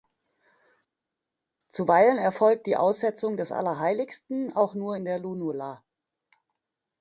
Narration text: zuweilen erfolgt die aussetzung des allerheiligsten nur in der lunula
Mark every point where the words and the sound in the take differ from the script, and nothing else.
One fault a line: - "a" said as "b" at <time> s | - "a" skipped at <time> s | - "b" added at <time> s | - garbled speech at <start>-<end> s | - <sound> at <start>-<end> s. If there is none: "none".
- "auch" added at 4.5 s